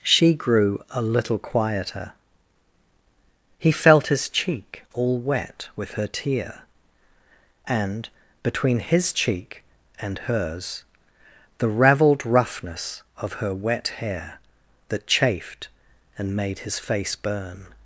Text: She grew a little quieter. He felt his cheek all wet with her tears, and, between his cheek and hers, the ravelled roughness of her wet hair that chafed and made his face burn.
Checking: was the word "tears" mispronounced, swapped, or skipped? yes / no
yes